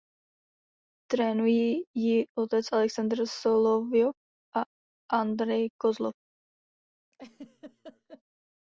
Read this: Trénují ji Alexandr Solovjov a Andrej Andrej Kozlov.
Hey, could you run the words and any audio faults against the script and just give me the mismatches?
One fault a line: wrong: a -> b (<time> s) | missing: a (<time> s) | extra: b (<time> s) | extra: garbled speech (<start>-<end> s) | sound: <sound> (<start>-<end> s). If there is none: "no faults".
extra: otec (2.3 s)
missing: Andrej (5.7 s)
sound: laugh (7.1-8.2 s)